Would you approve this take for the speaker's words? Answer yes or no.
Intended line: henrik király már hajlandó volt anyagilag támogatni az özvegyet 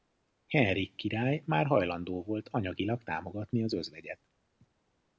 yes